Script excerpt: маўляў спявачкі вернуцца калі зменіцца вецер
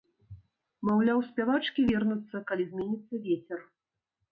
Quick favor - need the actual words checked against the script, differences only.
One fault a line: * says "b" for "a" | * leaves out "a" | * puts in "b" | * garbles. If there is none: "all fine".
all fine